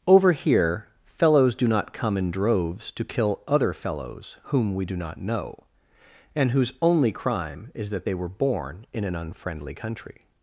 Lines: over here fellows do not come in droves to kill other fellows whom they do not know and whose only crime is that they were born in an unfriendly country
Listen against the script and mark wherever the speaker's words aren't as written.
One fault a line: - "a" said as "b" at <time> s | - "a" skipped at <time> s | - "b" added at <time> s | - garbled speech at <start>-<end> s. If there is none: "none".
- "they" said as "we" at 4.7 s